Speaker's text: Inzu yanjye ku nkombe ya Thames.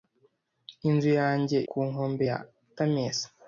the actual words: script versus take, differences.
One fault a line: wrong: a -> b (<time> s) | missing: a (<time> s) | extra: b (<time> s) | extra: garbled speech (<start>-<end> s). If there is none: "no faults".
no faults